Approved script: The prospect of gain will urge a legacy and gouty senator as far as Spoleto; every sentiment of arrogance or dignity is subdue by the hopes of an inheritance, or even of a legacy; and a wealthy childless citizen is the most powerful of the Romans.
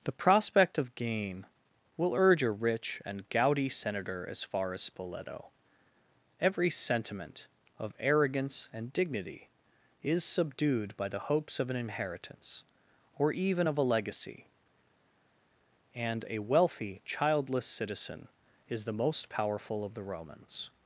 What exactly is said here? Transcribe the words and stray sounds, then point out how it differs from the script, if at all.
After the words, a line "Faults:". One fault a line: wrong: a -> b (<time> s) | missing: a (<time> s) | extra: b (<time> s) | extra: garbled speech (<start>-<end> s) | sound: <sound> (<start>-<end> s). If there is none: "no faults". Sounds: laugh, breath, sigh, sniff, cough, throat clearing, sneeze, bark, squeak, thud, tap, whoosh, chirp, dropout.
The prospect of gain will urge a rich and gouty senator as far as Spoleto; every sentiment of arrogance and dignity is subdued by the hopes of an inheritance, or even of a legacy; and a wealthy childless citizen is the most powerful of the Romans.
Faults:
wrong: legacy -> rich (2.5 s)
wrong: or -> and (8.7 s)
wrong: subdue -> subdued (10.2 s)